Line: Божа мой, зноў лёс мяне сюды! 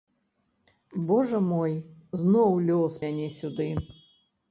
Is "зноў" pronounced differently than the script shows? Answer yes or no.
no